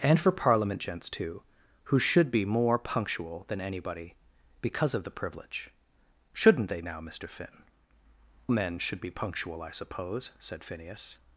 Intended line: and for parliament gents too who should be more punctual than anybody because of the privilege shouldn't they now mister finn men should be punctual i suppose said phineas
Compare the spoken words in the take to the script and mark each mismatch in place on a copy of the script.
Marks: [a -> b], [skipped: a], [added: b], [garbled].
and for parliament gents too who should be more punctual than anybody because of the privilege shouldn't they now mister finn men should be punctual i suppose said phineas